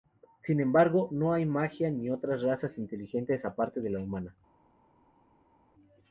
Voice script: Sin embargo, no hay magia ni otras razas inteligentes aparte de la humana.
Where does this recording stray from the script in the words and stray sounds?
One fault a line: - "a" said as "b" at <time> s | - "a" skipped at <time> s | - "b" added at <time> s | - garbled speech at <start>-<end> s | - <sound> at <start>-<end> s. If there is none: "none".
none